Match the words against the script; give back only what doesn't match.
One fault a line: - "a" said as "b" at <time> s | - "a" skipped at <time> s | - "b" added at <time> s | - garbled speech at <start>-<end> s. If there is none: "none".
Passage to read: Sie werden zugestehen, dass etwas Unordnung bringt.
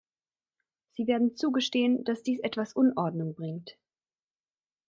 - "dies" added at 2.2 s